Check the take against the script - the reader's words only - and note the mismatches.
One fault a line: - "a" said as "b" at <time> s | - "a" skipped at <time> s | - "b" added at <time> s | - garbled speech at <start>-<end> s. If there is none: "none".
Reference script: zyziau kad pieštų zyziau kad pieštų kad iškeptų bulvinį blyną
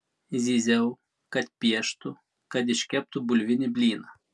- "zyziau kad pieštų" skipped at 2.1 s